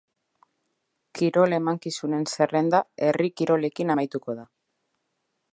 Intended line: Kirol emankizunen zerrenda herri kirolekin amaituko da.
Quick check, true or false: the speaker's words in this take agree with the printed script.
true